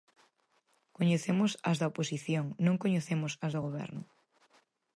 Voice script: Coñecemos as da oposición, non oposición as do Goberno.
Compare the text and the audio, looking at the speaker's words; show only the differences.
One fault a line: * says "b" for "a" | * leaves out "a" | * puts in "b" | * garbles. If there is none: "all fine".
* says "coñecemos" for "oposición"